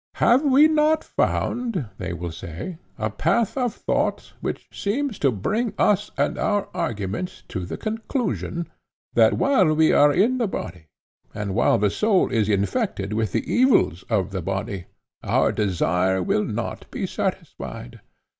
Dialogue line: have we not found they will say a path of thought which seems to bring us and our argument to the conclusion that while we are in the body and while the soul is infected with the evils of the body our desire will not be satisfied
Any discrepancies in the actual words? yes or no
no